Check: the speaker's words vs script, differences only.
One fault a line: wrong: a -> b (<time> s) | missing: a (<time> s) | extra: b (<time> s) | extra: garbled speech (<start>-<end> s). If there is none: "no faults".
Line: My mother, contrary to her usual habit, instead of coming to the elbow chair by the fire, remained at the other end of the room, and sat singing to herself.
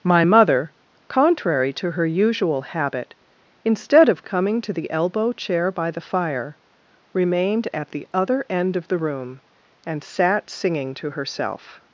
no faults